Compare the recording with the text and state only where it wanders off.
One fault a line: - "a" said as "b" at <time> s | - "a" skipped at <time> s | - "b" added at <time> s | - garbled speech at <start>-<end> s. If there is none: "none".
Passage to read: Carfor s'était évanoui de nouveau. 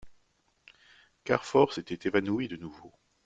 none